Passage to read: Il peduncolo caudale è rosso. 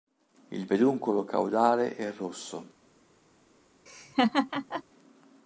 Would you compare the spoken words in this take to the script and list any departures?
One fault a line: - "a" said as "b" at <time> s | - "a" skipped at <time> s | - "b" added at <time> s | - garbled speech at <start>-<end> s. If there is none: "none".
none